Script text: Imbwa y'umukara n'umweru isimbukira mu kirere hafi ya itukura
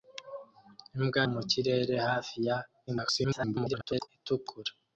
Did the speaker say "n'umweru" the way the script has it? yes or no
no